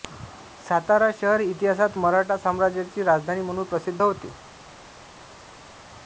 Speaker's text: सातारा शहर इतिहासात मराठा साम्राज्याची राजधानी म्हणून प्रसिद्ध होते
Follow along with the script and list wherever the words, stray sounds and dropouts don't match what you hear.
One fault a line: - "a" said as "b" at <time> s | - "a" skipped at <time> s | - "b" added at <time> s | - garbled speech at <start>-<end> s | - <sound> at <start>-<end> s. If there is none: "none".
none